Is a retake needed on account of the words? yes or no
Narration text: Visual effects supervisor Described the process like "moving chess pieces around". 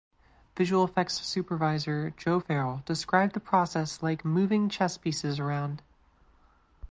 yes